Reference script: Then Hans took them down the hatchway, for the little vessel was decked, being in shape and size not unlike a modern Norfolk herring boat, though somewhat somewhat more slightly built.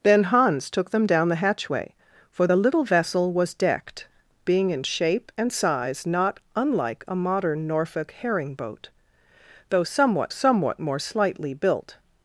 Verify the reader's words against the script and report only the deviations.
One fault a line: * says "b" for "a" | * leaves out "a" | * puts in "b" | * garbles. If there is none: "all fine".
all fine